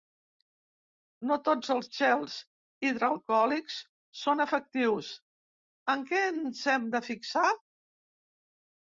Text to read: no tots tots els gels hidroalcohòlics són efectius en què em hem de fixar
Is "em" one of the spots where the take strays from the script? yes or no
yes